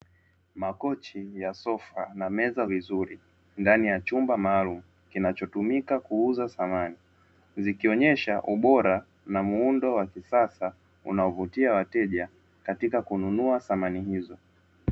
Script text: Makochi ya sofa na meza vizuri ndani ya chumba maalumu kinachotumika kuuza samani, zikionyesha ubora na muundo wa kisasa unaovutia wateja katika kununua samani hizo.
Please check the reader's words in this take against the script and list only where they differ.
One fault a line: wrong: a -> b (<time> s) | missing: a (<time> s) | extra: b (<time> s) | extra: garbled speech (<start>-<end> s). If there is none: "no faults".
no faults